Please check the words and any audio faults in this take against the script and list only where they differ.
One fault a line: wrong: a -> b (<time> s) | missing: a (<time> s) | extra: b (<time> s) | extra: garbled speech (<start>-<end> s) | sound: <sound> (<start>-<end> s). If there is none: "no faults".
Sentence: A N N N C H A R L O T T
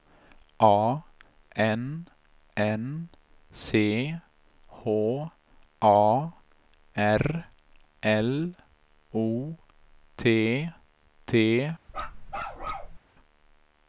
missing: N (3.1 s)
sound: bark (11.9-13.0 s)